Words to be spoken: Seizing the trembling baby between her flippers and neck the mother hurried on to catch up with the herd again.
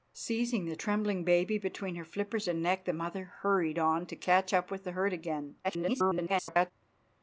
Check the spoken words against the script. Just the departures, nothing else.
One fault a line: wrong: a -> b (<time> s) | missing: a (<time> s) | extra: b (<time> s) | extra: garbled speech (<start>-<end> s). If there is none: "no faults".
extra: garbled speech (5.6-6.7 s)